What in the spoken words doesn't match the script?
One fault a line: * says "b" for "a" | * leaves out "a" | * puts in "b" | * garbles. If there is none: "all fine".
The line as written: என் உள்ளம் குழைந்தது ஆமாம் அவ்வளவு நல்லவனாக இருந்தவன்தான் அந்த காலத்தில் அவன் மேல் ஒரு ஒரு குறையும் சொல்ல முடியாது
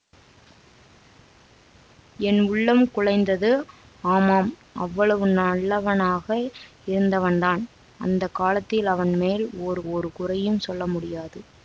all fine